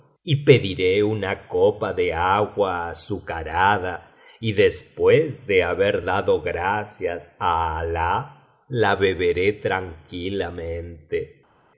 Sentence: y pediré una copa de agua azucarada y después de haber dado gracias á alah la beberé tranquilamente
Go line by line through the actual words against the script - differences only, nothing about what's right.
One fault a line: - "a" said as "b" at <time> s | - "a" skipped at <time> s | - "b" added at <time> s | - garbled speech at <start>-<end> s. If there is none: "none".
none